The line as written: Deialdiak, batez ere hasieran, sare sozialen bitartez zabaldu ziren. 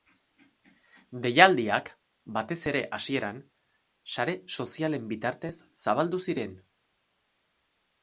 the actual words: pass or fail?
pass